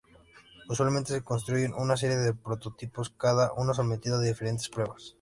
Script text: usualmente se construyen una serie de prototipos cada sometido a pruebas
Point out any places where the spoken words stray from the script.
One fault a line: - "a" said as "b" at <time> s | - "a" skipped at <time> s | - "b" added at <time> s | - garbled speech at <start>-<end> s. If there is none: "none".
- "uno" added at 3.5 s
- "diferentes" added at 4.2 s